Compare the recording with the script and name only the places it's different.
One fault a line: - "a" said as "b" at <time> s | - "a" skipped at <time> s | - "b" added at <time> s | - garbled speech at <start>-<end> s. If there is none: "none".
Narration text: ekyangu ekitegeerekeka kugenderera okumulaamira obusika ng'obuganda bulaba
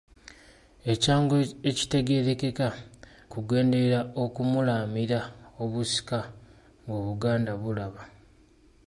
none